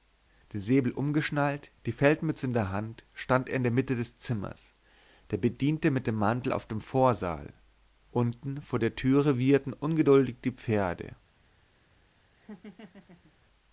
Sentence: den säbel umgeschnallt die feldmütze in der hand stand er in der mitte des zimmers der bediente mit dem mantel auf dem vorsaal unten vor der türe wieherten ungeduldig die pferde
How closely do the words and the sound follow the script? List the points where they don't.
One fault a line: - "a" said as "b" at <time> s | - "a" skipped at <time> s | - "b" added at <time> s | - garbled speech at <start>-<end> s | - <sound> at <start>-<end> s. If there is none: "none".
- laugh at 12.4-13.3 s